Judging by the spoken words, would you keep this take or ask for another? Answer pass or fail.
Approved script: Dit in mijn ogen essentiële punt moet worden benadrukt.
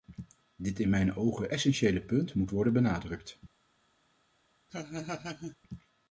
pass